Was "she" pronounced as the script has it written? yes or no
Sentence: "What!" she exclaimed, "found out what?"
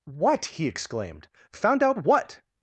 no